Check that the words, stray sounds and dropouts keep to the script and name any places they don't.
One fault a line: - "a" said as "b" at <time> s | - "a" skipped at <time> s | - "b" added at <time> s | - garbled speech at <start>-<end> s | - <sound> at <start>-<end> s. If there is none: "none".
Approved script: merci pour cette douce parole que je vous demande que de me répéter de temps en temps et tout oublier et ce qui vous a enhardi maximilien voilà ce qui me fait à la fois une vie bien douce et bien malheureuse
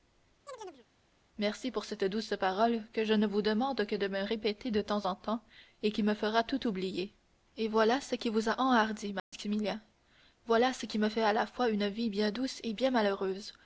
- chirp at 0.5-0.9 s
- "ne" added at 3.1 s
- "qui me fera" added at 5.9 s
- "voilà" added at 7.7 s
- dropout at 9.2-9.3 s